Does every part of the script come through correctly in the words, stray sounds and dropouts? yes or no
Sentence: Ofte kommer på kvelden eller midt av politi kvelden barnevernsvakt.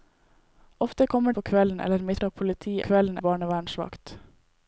yes